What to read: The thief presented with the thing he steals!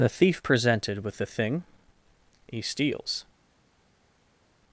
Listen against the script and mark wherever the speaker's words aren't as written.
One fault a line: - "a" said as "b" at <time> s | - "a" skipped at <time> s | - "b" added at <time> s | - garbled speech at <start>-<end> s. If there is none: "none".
none